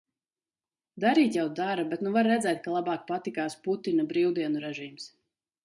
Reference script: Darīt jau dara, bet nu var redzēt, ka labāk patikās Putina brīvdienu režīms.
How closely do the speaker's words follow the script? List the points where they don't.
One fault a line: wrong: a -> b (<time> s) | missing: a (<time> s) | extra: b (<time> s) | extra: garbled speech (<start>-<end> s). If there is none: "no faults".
no faults